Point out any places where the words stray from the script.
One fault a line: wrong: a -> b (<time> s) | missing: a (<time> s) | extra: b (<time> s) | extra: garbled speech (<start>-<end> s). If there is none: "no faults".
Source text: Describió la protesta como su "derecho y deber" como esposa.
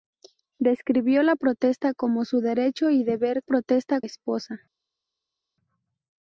wrong: como -> protesta (3.4 s)